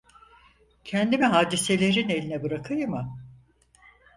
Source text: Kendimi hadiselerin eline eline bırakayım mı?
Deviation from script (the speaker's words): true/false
true